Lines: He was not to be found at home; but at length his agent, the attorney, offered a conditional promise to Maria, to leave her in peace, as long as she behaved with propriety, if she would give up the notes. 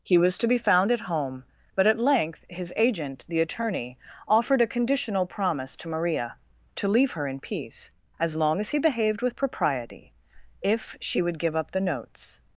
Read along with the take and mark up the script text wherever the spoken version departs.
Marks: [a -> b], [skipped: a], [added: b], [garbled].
He was [skipped: not] to be found at home; but at length his agent, the attorney, offered a conditional promise to Maria, to leave her in peace, as long as [she -> he] behaved with propriety, if she would give up the notes.